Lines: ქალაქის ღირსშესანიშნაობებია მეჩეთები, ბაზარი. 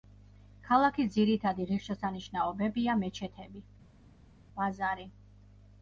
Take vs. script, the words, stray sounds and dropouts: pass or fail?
fail